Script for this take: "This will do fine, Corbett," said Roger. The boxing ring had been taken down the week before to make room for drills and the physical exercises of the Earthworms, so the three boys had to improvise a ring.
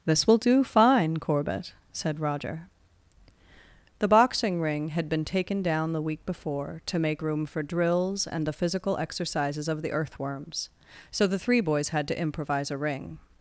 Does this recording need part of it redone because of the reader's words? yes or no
no